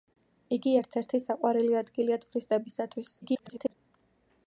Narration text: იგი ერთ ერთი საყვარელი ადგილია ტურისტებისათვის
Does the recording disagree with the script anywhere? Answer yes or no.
yes